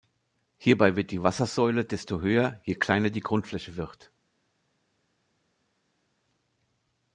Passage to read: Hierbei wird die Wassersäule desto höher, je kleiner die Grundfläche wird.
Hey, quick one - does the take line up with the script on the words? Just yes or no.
yes